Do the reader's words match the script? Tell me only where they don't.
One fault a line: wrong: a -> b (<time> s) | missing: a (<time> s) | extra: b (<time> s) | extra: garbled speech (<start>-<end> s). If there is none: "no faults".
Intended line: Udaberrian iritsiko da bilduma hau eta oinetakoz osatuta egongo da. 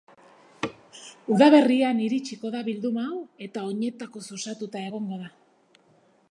no faults